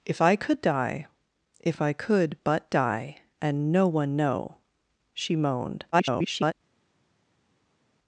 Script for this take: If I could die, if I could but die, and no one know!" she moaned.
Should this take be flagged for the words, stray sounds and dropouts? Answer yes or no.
yes